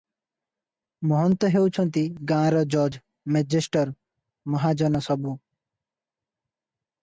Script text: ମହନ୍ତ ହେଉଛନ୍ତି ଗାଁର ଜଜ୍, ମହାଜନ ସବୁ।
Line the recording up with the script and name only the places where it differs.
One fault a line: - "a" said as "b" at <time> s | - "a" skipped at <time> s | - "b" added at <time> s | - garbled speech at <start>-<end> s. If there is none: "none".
- "ମେଜେଷ୍ଟର" added at 3.3 s